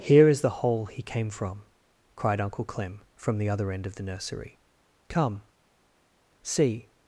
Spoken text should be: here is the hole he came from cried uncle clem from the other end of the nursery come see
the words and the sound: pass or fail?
pass